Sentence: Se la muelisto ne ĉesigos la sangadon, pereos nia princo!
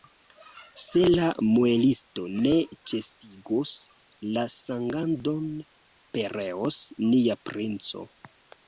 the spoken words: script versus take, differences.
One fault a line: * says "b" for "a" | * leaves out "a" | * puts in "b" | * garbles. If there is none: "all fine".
all fine